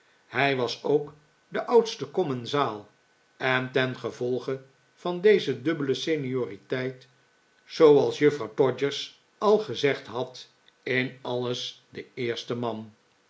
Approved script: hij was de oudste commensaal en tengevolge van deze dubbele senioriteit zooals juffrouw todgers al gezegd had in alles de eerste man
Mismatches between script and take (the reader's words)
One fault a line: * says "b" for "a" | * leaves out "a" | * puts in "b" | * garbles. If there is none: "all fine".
* puts in "ook"